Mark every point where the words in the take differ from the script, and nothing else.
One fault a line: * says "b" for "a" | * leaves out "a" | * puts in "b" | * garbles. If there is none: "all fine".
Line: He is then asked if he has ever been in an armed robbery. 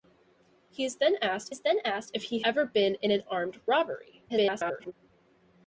* puts in "is then asked"
* leaves out "has"
* garbles